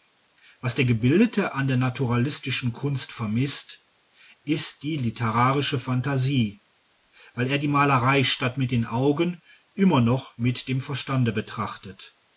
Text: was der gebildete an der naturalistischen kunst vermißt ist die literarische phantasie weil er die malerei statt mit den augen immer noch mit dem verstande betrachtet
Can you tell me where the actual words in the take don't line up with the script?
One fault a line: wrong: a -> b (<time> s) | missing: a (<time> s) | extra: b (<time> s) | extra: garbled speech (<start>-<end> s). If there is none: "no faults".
no faults